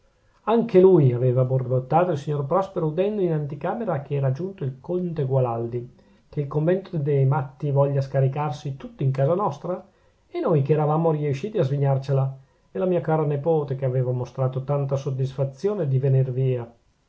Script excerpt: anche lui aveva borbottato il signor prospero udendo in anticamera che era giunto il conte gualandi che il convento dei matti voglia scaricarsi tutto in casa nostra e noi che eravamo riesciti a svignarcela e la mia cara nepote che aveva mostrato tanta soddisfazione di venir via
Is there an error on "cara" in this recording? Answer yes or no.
no